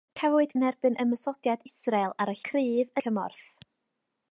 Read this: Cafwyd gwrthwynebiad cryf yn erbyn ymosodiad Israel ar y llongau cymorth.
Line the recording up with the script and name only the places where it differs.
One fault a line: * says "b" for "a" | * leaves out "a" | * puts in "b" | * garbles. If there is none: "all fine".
* leaves out "gwrthwynebiad cryf"
* says "cryf" for "llongau"